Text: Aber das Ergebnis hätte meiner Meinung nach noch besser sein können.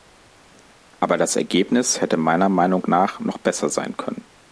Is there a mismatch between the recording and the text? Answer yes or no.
no